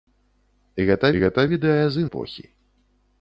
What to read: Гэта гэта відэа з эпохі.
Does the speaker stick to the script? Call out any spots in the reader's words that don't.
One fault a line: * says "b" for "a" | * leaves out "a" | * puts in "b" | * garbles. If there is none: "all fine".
all fine